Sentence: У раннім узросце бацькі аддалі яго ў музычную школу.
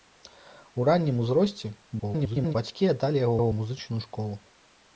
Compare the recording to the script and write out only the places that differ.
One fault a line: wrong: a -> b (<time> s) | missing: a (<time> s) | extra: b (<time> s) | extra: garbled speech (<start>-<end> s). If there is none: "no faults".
extra: garbled speech (2.0-2.5 s)
extra: яго (3.4 s)